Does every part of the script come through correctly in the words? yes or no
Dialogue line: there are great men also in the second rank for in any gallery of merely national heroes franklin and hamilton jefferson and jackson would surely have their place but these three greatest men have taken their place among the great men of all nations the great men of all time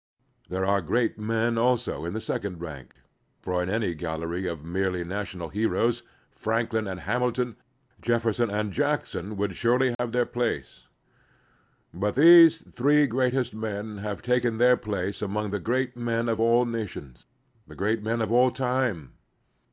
yes